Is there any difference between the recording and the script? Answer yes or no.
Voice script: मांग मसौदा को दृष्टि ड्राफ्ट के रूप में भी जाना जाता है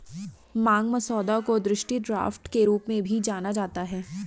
no